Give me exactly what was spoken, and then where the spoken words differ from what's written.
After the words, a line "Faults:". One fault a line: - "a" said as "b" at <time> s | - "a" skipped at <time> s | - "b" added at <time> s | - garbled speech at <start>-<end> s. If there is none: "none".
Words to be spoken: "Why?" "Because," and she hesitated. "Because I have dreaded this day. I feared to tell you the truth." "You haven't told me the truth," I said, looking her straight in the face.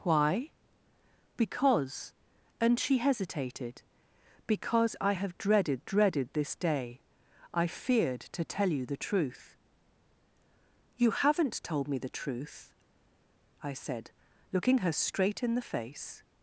"Why?" "Because," and she hesitated. "Because I have dreaded dreaded this day. I feared to tell you the truth." "You haven't told me the truth," I said, looking her straight in the face.
Faults:
- "dreaded" added at 5.8 s